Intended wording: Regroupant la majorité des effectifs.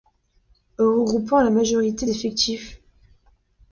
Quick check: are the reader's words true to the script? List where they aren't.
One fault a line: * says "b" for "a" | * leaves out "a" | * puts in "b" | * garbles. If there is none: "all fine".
* leaves out "des"